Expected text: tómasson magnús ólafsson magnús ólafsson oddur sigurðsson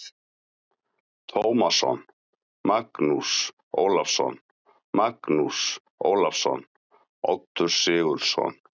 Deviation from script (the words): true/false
false